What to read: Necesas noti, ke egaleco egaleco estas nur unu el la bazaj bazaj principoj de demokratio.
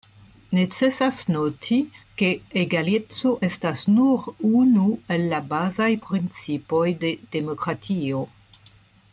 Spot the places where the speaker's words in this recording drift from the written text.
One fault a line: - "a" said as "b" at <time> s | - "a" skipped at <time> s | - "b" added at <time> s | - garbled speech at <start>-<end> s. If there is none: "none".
- "egaleco" skipped at 3.4 s
- "bazaj" skipped at 5.9 s